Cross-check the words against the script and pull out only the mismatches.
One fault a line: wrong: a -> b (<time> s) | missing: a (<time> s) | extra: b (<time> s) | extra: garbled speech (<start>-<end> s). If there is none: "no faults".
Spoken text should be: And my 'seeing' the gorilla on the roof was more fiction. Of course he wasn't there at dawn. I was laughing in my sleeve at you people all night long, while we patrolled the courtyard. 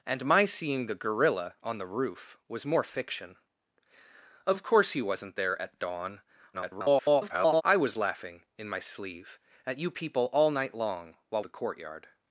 extra: garbled speech (6.5-7.6 s)
missing: we patrolled (11.4 s)